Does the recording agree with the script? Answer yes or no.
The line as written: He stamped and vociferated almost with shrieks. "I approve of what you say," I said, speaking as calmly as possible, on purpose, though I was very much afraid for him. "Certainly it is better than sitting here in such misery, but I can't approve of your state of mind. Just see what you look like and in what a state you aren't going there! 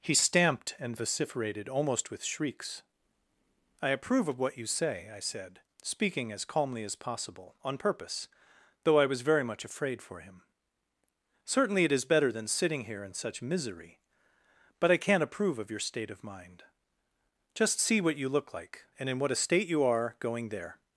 no